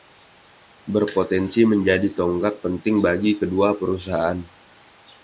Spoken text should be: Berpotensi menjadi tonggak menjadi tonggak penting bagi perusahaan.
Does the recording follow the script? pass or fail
fail